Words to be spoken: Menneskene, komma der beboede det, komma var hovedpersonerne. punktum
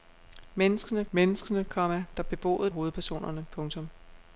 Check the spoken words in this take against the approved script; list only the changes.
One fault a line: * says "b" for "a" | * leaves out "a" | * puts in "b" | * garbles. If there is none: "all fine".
* puts in "menneskene"
* leaves out "det komma var"